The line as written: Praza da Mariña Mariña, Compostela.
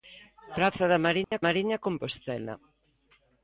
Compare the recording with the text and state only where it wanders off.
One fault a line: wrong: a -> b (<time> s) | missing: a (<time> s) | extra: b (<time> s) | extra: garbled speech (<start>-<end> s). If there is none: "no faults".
no faults